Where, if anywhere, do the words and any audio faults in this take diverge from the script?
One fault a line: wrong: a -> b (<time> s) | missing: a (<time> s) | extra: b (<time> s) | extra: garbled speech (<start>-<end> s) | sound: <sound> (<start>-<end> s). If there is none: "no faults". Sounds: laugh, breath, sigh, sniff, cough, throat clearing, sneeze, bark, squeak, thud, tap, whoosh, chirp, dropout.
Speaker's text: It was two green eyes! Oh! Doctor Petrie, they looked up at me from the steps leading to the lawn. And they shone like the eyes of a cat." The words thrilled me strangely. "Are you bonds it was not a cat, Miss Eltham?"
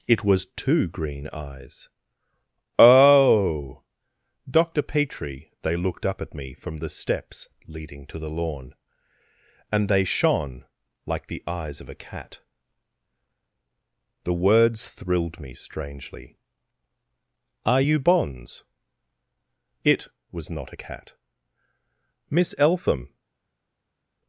no faults